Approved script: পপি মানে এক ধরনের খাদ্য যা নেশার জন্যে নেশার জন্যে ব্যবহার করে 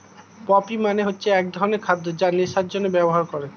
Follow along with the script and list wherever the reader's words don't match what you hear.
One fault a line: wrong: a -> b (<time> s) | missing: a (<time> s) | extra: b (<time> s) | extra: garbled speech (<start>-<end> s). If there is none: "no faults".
extra: হচ্ছে (1.1 s)
missing: নেশার জন্যে (2.9 s)